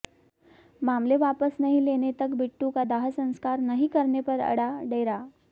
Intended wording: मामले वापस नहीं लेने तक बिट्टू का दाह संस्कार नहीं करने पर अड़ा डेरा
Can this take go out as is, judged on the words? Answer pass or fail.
pass